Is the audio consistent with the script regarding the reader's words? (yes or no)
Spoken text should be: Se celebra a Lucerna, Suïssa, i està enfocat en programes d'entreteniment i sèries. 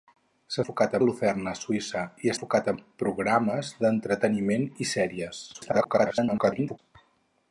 no